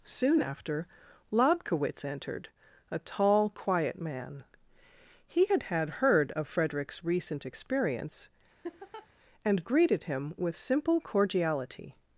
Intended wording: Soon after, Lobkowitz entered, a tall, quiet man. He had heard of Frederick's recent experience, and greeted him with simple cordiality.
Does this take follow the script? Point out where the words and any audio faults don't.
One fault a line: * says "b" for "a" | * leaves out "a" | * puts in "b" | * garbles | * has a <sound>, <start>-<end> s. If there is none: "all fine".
* puts in "had"
* has a laugh, 8.6-9.1 s